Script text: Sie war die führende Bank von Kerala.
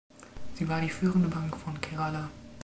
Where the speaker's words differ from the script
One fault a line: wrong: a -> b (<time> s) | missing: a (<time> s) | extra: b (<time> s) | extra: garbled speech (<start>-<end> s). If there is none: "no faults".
no faults